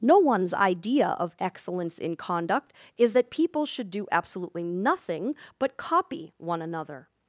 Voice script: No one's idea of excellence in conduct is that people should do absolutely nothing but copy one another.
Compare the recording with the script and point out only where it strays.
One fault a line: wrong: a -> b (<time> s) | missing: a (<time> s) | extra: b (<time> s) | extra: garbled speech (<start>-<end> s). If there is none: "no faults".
no faults